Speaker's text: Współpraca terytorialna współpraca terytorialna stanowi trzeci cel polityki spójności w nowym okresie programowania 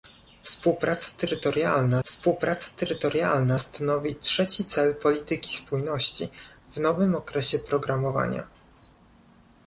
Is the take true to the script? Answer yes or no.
yes